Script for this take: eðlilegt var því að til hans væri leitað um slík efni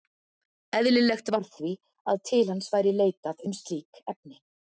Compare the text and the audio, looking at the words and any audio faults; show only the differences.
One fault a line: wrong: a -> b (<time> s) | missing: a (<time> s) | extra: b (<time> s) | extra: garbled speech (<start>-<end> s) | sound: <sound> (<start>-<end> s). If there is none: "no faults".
no faults